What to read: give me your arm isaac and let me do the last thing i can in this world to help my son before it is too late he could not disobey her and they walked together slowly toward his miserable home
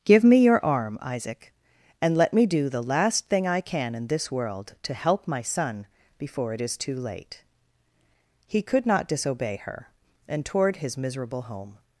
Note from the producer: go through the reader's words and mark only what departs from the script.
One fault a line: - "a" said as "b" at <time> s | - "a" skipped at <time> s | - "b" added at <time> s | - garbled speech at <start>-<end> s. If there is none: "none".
- "they walked together slowly" skipped at 10.4 s